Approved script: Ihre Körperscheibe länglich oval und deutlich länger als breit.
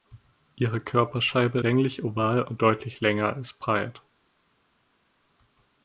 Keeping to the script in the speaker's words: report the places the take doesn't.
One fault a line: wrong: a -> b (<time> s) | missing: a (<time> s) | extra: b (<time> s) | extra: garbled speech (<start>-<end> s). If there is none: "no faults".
no faults